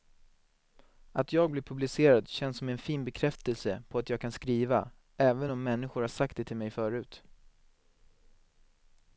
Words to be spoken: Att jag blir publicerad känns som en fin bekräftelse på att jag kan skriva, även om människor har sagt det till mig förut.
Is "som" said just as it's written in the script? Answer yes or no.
yes